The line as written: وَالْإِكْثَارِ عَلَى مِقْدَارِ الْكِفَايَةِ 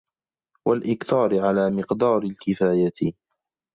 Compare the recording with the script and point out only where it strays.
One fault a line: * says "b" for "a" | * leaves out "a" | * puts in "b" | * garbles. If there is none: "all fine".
all fine